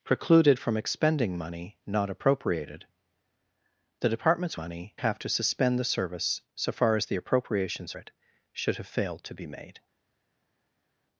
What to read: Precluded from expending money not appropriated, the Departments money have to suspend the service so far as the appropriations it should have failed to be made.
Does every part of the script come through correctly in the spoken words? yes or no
yes